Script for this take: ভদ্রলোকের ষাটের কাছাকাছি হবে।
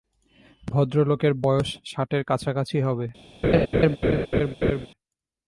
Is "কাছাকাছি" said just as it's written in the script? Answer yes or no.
yes